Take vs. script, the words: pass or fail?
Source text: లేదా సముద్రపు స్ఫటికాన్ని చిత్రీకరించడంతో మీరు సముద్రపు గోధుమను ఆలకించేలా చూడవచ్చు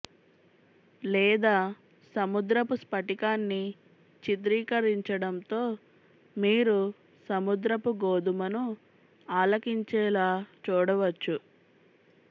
pass